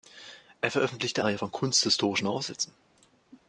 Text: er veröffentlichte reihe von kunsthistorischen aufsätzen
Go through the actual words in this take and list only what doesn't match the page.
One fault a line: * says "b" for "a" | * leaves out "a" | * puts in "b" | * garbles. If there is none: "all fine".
all fine